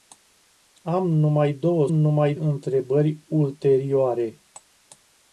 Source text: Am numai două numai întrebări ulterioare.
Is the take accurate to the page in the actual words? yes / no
yes